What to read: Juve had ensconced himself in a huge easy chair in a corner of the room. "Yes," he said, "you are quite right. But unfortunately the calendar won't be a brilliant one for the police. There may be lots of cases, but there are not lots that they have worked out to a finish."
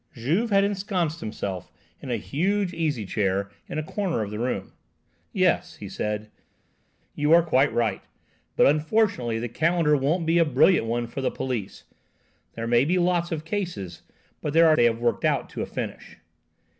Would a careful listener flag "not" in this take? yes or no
yes